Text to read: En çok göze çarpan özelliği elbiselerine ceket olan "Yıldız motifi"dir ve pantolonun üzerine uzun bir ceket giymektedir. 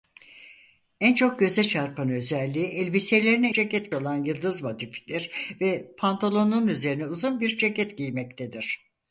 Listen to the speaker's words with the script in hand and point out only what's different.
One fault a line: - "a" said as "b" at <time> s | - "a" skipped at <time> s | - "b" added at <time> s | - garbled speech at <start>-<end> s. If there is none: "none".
none